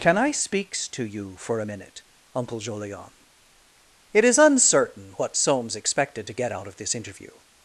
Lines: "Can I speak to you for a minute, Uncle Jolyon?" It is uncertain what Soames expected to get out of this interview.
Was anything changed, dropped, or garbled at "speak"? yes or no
yes